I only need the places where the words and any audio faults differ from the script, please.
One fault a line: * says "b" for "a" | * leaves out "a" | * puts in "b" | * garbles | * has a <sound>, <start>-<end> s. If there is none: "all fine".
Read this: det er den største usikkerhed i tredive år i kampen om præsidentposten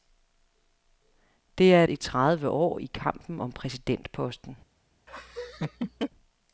* leaves out "den største usikkerhed"
* has a laugh, 5.1-6.1 s